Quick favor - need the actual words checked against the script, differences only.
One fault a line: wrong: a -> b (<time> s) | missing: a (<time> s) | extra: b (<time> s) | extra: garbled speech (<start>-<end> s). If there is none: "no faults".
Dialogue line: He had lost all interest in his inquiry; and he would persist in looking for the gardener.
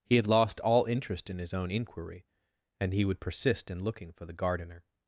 extra: own (1.5 s)